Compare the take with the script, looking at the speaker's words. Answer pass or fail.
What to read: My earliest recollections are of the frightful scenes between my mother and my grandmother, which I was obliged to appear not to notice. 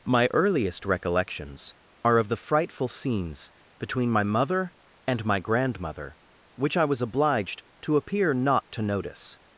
pass